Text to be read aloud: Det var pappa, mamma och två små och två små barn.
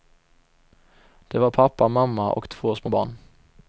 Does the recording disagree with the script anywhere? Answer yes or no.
yes